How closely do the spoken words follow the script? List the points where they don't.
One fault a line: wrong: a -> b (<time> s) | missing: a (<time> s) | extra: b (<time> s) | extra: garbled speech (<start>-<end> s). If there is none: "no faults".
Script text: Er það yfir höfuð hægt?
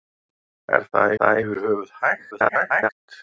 extra: það (1.2 s)
extra: garbled speech (2.3-2.9 s)